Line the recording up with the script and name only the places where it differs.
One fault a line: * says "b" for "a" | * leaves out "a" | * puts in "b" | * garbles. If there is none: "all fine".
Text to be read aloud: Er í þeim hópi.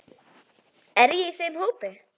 * puts in "ég"